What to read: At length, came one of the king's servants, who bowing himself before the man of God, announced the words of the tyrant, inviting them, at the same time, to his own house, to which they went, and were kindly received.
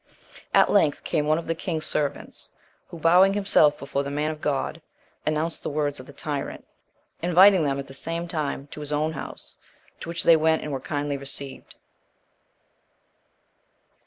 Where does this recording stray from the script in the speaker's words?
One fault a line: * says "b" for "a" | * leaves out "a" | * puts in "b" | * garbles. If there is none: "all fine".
all fine